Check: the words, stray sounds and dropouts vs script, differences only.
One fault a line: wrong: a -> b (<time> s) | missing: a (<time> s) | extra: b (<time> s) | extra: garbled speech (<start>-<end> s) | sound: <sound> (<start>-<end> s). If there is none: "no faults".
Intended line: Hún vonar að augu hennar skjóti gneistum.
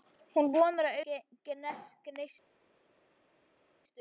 missing: augu hennar skjóti (1.0 s)